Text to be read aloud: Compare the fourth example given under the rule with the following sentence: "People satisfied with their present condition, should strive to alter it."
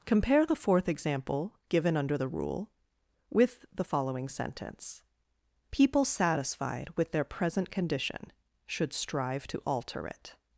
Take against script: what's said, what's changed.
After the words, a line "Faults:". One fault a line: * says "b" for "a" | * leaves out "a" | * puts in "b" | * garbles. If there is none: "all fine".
Compare the fourth example given under the rule with the following sentence: "People satisfied with their present condition, should strive to alter it."
Faults:
all fine